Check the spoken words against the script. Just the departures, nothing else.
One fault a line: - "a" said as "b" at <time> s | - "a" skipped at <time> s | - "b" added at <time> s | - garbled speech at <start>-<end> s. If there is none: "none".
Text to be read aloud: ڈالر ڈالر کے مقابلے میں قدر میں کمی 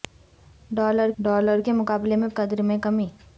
none